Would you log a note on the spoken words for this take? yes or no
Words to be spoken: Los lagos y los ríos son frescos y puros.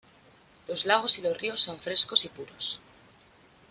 no